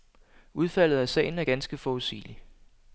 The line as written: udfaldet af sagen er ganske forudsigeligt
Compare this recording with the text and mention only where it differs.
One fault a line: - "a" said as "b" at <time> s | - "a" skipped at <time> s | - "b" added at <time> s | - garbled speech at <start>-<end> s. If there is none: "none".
none